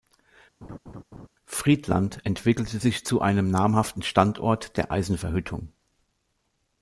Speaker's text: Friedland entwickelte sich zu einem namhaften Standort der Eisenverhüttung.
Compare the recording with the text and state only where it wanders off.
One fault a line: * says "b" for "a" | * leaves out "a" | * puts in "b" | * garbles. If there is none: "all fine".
all fine